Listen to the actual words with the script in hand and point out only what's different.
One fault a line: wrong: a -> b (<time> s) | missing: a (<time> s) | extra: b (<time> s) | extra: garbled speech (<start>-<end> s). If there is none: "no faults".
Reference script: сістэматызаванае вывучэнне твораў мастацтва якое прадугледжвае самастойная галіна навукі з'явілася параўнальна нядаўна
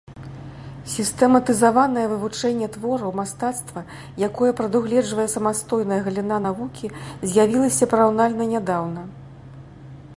no faults